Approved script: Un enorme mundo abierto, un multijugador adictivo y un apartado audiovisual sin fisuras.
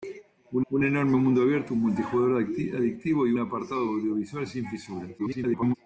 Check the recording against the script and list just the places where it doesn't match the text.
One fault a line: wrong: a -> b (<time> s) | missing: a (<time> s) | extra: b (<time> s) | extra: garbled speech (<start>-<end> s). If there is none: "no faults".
extra: un (0.7 s)
missing: un (3.3 s)
extra: garbled speech (5.2-5.7 s)